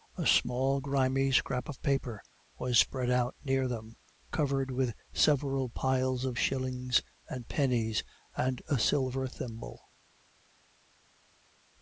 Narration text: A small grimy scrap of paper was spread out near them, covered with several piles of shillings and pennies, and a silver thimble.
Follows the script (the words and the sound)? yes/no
yes